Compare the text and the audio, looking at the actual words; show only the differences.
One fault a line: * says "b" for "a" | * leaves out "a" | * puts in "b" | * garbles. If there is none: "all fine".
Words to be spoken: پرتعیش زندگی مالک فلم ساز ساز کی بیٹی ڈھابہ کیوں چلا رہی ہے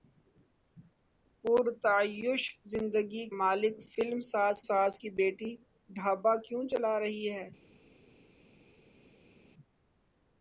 all fine